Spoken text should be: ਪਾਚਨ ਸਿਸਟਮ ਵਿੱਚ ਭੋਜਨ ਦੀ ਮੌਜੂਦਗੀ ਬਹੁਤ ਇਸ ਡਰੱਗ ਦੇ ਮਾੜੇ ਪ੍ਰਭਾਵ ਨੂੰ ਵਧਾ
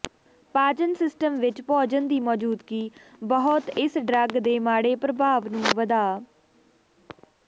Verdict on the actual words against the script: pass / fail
pass